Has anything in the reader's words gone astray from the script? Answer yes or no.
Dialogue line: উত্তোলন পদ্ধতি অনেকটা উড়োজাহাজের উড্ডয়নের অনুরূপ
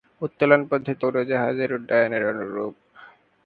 yes